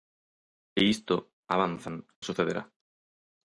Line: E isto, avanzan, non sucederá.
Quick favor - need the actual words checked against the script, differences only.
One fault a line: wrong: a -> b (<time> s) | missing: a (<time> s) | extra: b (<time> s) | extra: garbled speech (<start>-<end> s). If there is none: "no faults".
missing: non (2.0 s)